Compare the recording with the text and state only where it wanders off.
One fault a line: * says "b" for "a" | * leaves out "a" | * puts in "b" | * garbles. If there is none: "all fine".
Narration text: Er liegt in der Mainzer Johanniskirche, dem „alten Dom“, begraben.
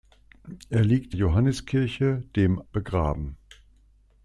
* leaves out "in der Mainzer"
* leaves out "alten Dom"